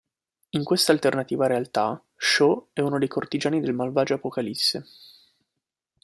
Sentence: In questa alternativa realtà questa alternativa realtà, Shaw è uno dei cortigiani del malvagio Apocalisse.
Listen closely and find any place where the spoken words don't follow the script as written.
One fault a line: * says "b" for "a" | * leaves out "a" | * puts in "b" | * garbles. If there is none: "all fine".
* leaves out "questa alternativa realtà"